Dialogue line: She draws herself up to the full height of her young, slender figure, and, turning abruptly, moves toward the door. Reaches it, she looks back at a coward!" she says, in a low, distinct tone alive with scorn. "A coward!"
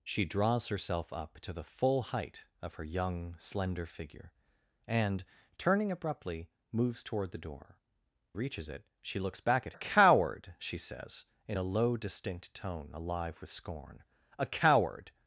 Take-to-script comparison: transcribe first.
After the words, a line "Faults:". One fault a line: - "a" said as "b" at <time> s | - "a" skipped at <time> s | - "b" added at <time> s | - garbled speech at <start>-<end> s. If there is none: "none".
She draws herself up to the full height of her young, slender figure, and, turning abruptly, moves toward the door. Reaches it, she looks back at a coward!" she says, in a low, distinct tone alive with scorn. "A coward!"
Faults:
none